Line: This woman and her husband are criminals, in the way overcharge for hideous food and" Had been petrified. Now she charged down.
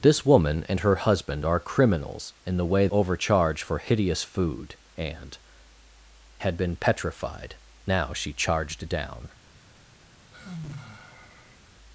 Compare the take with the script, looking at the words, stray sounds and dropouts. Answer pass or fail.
fail